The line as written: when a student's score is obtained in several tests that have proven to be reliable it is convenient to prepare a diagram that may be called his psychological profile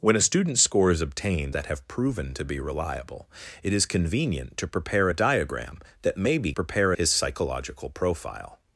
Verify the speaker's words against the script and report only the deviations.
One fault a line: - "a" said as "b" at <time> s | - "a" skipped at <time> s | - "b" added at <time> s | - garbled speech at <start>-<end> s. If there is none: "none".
- "in several tests" skipped at 1.6 s
- "called" said as "prepare" at 6.5 s